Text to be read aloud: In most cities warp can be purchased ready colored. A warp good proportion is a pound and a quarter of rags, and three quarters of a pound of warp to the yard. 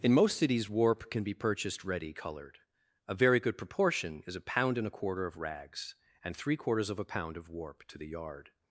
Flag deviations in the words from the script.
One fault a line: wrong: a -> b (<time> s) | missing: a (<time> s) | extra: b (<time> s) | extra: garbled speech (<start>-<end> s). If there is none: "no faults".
wrong: warp -> very (3.1 s)